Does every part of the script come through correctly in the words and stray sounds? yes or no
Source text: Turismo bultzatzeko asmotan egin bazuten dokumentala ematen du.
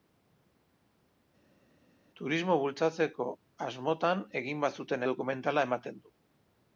yes